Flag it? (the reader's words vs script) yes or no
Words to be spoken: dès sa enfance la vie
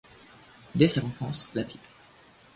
no